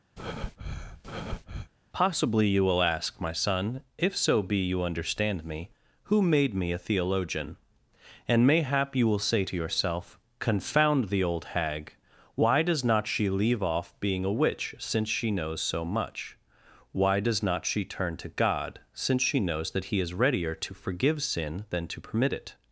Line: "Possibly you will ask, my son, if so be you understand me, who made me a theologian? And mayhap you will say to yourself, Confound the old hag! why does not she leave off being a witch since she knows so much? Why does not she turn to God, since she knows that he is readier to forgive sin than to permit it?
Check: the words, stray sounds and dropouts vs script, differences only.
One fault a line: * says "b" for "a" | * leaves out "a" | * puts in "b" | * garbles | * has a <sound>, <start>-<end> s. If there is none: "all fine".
* has a breath, 0.2-1.7 s